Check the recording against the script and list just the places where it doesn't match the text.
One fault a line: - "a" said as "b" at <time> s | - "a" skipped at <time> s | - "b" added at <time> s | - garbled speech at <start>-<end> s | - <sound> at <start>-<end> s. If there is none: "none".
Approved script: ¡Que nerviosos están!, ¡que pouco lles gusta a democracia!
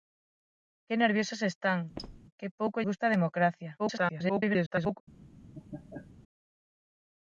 - squeak at 2.0-2.2 s
- "lles" skipped at 2.8 s
- garbled speech at 3.8-5.0 s
- laugh at 5.5-6.1 s